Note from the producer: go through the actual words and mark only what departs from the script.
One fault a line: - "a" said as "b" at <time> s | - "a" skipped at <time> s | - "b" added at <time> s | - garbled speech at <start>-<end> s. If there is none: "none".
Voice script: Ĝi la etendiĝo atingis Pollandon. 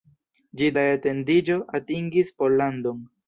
none